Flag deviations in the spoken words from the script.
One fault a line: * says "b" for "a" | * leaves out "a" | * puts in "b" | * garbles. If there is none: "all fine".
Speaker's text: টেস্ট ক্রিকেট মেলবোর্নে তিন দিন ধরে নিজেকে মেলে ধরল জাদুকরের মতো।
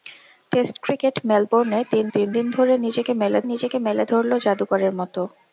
* puts in "তিন"
* puts in "নিজেকে মেলে"